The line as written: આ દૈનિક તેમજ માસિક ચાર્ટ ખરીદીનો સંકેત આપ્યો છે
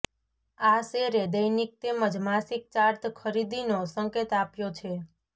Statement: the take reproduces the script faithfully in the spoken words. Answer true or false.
false